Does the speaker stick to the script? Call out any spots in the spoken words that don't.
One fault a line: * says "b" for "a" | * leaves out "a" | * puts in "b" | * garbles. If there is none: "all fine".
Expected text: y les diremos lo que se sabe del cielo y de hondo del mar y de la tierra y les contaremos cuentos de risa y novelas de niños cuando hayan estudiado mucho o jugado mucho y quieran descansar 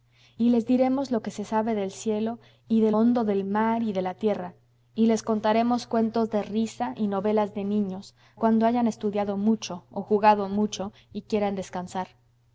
all fine